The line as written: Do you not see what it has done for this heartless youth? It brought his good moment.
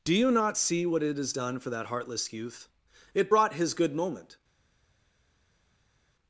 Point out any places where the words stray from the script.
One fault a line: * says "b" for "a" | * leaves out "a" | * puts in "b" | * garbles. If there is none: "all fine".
* says "that" for "this"